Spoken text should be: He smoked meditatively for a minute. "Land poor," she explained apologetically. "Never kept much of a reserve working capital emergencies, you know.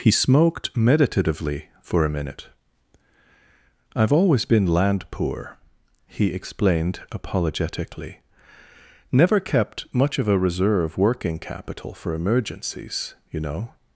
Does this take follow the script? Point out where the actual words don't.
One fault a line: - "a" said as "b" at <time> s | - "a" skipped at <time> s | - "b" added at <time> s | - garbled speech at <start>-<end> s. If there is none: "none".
- "I've always been" added at 4.0 s
- "she" said as "he" at 6.1 s
- "for" added at 11.9 s